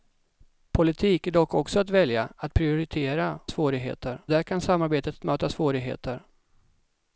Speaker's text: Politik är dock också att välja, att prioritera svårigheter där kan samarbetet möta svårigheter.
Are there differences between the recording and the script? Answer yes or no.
no